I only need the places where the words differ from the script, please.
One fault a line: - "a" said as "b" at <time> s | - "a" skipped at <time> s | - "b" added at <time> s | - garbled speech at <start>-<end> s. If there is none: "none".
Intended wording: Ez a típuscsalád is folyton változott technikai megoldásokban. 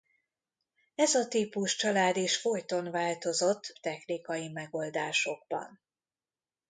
none